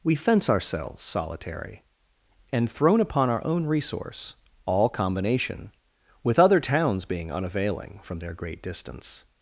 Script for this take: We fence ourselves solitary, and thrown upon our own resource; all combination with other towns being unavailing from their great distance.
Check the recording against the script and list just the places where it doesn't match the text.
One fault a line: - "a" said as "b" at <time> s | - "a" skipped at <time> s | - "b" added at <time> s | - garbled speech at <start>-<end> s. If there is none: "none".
none